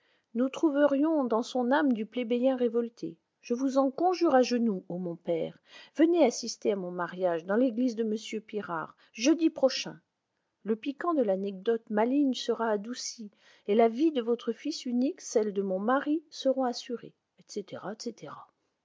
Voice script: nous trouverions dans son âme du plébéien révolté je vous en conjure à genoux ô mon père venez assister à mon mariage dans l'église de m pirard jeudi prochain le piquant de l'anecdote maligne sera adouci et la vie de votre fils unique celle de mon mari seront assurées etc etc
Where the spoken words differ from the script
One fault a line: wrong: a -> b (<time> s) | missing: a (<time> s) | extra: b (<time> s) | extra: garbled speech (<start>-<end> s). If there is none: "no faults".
no faults